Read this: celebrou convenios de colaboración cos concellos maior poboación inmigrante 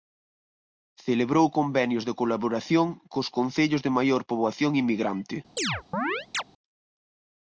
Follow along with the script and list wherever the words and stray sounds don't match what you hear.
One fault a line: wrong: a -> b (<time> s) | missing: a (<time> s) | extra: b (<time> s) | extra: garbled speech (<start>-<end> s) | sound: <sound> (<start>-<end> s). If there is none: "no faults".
extra: de (3.9 s)
sound: chirp (5.6-6.4 s)